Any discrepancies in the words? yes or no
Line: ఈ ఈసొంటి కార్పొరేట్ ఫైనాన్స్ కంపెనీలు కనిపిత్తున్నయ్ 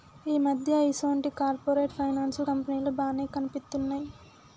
yes